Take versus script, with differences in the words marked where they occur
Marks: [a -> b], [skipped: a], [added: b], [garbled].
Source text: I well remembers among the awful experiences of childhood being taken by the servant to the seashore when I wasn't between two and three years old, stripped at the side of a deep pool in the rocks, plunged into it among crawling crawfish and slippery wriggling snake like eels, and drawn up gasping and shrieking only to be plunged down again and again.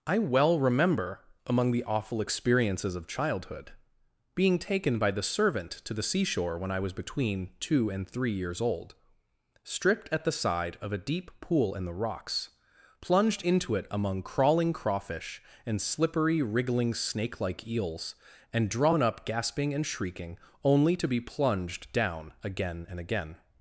I well [remembers -> remember] among the awful experiences of childhood being taken by the servant to the seashore when I [wasn't -> was] between two and three years old, stripped at the side of a deep pool in the rocks, plunged into it among crawling crawfish and slippery wriggling snake like eels, and drawn up gasping and shrieking only to be plunged down again and again.